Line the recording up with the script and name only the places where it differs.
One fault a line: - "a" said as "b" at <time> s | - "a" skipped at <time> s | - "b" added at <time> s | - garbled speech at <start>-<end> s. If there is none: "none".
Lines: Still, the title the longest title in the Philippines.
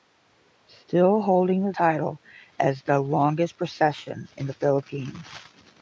- "holding" added at 1.2 s
- "as" added at 2.6 s
- "title" said as "procession" at 3.6 s